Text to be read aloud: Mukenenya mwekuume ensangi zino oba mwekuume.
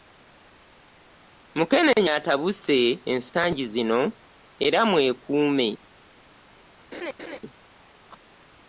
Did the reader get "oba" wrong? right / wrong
wrong